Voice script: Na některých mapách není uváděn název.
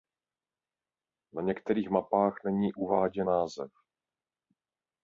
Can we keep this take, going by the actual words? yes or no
yes